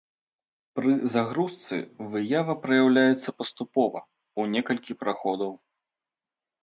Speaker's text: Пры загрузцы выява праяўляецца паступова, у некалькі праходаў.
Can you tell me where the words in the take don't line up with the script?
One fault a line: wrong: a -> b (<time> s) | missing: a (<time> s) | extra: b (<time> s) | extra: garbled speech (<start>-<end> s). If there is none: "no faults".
no faults